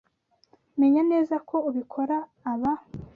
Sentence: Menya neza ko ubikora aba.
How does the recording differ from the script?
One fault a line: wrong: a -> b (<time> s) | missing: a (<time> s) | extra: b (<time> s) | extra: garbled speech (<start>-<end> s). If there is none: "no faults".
no faults